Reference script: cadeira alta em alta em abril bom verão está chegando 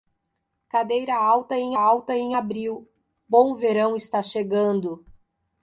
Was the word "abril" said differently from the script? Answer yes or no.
no